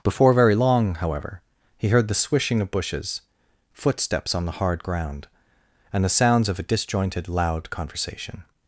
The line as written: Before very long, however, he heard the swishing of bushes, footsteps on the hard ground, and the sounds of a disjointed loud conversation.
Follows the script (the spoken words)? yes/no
yes